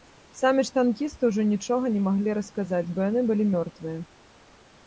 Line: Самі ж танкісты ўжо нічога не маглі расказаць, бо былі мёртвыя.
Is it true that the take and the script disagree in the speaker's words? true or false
true